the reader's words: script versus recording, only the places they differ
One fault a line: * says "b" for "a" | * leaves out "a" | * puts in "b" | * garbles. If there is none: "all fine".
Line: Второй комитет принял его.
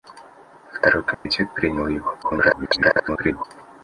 * garbles